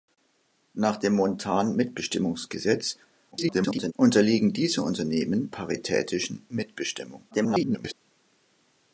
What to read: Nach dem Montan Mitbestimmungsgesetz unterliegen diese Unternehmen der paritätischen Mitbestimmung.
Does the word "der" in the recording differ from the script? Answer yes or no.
yes